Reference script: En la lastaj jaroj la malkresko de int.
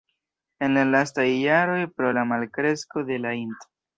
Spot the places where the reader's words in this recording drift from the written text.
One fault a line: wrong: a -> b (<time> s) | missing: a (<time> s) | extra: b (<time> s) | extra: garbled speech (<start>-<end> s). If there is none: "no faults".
extra: pro (2.0 s)
extra: la (3.3 s)